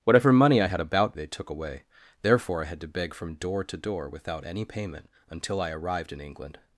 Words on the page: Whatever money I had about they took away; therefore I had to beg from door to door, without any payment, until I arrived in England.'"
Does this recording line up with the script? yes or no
yes